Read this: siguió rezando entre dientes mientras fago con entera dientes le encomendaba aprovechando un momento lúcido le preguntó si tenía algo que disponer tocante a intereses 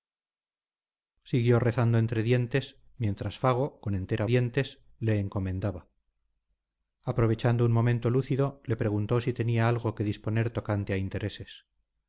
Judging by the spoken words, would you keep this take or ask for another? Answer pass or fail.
pass